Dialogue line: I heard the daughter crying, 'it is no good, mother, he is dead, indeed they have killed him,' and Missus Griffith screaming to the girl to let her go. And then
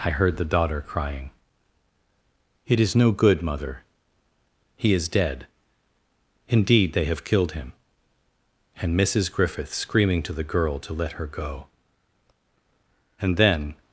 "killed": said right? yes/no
yes